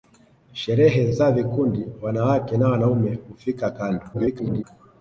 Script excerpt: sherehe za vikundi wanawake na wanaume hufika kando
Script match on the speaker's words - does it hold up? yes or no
no